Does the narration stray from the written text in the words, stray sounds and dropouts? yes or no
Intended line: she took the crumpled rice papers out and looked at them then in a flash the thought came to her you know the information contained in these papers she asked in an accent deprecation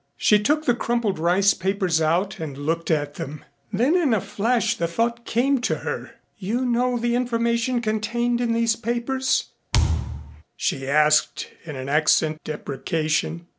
yes